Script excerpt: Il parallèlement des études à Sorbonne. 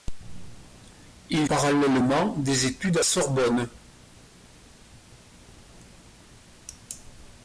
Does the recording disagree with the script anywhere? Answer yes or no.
no